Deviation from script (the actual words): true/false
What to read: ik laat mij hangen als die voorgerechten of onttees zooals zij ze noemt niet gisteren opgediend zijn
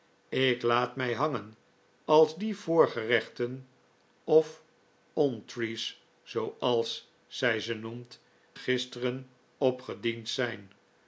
true